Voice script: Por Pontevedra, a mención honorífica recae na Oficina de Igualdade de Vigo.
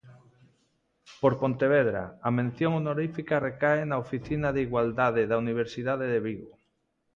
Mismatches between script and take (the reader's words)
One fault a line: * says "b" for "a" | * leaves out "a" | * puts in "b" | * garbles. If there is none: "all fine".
* puts in "da Universidade"